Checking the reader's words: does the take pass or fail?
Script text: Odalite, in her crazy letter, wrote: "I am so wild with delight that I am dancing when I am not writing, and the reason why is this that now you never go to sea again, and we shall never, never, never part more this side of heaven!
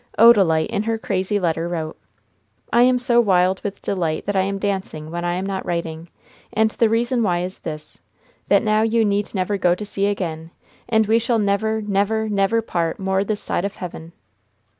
fail